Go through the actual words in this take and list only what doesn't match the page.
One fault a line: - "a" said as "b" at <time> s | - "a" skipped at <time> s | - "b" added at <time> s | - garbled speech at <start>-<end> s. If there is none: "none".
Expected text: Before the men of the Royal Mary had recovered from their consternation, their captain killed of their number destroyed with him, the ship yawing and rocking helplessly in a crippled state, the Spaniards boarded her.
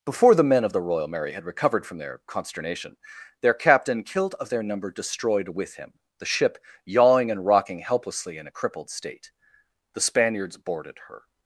none